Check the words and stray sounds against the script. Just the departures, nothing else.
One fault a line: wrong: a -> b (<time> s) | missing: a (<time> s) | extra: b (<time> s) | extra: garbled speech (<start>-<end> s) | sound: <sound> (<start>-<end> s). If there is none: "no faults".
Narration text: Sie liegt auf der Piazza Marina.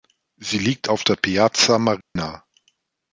sound: dropout (2.0-2.2 s)